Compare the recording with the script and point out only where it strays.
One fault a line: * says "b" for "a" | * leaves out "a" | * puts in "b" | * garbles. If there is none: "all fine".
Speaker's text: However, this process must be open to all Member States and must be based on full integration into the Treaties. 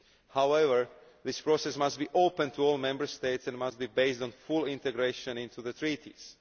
all fine